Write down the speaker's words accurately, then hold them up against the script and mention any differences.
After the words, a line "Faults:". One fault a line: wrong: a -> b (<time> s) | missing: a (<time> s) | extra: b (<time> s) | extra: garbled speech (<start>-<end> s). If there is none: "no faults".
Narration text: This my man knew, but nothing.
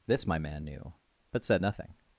This my man knew, but said nothing.
Faults:
extra: said (1.4 s)